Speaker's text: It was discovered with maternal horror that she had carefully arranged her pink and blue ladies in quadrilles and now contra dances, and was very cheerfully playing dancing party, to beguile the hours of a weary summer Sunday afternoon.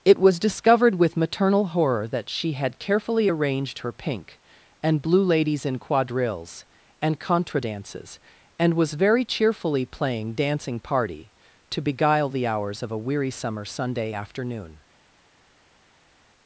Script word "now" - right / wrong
wrong